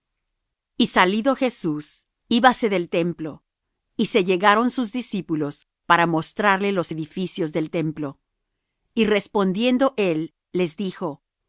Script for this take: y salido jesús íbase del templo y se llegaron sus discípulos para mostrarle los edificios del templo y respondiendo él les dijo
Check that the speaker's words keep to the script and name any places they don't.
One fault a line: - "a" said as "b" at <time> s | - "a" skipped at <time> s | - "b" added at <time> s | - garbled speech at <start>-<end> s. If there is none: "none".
none